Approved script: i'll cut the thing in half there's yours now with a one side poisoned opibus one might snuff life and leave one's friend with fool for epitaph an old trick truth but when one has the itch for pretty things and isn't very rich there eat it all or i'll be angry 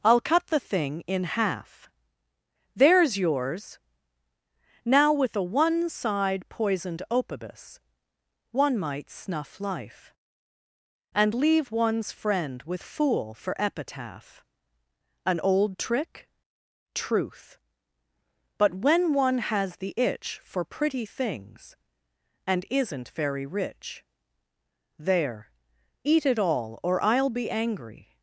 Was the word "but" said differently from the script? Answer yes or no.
no